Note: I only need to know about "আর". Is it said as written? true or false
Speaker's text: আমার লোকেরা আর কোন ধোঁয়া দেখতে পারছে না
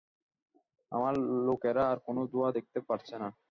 true